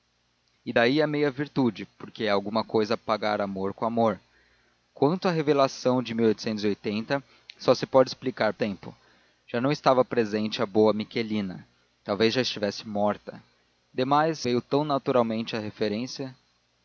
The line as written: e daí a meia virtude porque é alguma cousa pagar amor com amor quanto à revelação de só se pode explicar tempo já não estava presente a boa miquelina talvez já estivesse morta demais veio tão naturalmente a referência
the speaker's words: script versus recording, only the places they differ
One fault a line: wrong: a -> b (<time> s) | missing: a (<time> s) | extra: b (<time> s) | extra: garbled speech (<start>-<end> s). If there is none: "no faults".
no faults